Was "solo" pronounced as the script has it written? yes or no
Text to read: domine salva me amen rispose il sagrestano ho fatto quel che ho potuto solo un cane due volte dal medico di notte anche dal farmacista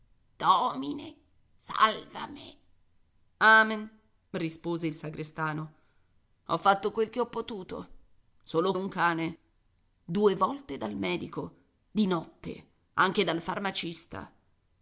yes